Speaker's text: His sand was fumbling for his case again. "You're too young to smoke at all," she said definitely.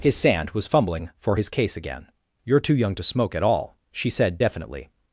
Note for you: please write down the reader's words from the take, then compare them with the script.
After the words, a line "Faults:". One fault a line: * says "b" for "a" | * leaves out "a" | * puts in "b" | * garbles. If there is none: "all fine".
His sand was fumbling for his case again. "You're too young to smoke at all," she said definitely.
Faults:
all fine